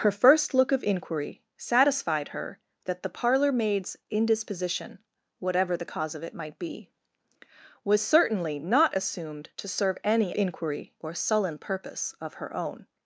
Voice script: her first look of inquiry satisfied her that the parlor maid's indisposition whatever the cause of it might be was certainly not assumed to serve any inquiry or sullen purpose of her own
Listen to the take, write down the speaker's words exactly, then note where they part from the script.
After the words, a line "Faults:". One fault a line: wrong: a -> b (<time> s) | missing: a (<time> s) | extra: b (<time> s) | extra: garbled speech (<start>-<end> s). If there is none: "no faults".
her first look of inquiry satisfied her that the parlor maid's indisposition whatever the cause of it might be was certainly not assumed to serve any inquiry or sullen purpose of her own
Faults:
no faults